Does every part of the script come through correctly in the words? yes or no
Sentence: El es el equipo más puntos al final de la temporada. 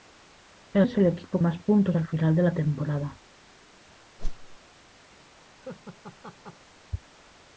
yes